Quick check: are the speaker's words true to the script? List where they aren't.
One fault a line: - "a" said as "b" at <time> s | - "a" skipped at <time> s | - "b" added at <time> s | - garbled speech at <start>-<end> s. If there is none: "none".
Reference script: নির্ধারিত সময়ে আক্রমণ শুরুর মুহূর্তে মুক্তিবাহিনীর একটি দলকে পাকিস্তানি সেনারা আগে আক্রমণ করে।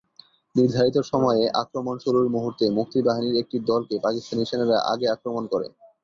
none